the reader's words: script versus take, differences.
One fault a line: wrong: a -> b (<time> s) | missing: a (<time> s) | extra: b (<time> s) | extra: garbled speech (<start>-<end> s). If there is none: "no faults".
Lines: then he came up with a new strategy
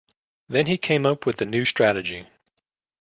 no faults